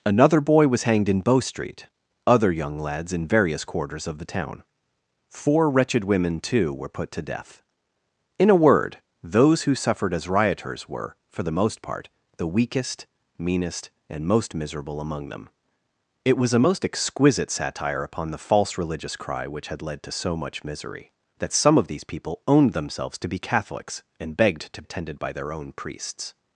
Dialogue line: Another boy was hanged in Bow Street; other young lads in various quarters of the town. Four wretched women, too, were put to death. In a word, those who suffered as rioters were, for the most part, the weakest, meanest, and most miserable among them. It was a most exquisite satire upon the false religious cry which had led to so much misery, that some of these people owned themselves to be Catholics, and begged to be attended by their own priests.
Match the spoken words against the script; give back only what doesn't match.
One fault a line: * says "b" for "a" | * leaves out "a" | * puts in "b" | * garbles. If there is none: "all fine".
* leaves out "be"